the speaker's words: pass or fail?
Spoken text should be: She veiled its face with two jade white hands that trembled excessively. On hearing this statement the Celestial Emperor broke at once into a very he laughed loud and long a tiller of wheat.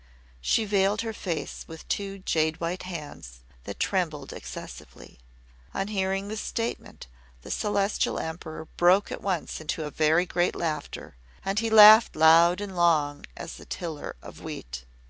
fail